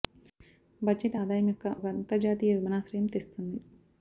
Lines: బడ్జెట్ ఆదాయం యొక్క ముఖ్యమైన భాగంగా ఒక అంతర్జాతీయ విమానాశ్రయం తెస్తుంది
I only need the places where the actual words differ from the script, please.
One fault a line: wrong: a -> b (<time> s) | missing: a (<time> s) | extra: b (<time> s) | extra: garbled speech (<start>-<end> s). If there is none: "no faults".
missing: ముఖ్యమైన భాగంగా (1.7 s)